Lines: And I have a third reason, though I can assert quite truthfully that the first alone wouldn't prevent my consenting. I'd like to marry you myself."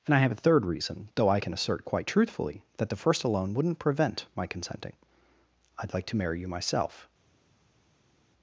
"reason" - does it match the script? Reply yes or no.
yes